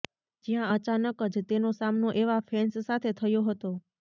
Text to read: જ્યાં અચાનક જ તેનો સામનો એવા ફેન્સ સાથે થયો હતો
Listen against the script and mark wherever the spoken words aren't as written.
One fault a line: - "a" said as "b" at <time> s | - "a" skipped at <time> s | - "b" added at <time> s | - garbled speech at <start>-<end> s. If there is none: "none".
none